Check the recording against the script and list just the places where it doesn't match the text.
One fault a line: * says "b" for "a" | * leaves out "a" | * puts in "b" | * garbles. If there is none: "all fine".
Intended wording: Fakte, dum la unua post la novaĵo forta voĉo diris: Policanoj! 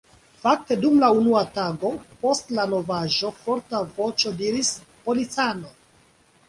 * puts in "tago"